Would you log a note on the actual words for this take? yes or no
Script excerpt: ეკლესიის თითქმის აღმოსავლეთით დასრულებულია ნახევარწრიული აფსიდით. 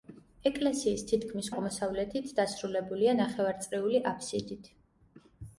no